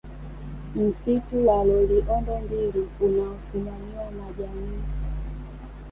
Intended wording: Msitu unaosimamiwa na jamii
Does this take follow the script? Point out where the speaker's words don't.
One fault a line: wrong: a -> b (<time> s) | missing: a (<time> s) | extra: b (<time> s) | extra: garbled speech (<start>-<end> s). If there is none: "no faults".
extra: wa Loliondo mbili (1.5 s)